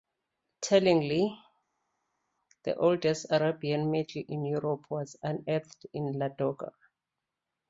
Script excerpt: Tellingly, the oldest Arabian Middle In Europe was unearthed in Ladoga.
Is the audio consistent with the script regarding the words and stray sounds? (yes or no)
yes